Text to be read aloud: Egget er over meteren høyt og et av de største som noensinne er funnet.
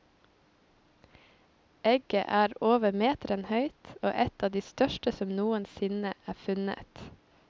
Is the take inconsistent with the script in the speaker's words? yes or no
no